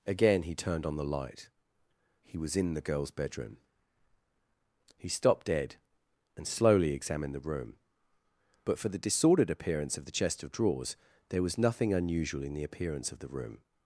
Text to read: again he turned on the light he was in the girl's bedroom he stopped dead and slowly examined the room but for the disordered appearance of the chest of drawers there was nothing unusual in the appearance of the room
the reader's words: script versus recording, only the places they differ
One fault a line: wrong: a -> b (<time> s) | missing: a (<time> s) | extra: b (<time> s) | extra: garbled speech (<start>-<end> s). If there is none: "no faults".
no faults